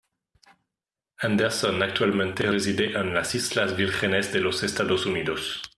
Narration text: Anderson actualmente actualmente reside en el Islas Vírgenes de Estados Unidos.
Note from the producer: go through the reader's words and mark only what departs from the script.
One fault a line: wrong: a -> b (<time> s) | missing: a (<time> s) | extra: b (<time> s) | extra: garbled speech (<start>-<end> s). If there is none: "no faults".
missing: actualmente (2.5 s)
wrong: el -> las (3.1 s)
extra: los (4.4 s)